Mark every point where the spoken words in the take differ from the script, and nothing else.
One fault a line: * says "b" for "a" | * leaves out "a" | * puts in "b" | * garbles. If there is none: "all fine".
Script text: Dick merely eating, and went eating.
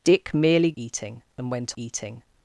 all fine